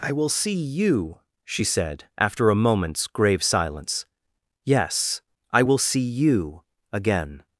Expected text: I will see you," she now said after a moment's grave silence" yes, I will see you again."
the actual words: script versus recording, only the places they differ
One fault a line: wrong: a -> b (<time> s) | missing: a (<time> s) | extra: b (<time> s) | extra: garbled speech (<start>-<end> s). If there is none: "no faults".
missing: now (1.6 s)